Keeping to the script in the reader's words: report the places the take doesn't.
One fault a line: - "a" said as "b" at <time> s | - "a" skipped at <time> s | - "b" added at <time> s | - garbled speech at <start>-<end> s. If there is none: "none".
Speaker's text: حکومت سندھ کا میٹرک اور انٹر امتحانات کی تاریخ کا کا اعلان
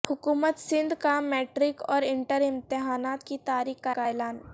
none